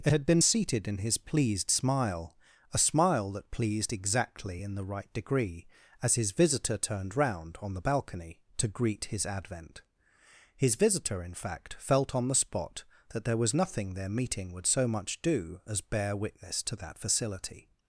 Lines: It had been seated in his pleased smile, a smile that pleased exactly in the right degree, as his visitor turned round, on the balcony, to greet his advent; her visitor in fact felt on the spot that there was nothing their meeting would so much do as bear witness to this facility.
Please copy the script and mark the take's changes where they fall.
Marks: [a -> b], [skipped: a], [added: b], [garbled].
It had been seated in his pleased smile, a smile that pleased exactly in the right degree, as his visitor turned round, on the balcony, to greet his advent; [her -> his] visitor in fact felt on the spot that there was nothing their meeting would so much do as bear witness to [this -> that] facility.